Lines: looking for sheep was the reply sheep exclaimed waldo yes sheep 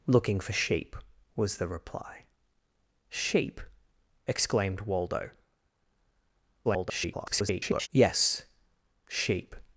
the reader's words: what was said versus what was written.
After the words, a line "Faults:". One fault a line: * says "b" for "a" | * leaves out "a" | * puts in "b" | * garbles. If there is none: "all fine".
looking for sheep was the reply sheep exclaimed waldo [garbled] yes sheep
Faults:
* garbles